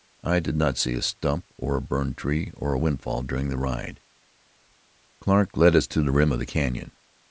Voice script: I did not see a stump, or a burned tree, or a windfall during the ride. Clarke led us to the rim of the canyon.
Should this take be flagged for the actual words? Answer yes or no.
no